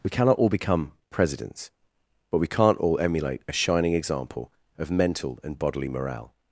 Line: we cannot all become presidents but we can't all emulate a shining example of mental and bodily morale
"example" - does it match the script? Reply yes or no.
yes